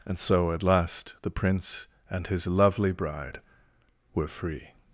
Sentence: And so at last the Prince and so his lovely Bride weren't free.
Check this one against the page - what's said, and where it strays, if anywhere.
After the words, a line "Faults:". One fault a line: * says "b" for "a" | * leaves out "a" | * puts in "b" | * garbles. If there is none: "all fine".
And so at last the Prince and his lovely Bride were free.
Faults:
* leaves out "so"
* says "were" for "weren't"